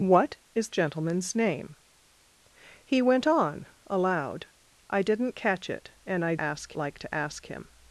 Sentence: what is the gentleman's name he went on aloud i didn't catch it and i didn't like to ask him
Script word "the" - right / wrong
wrong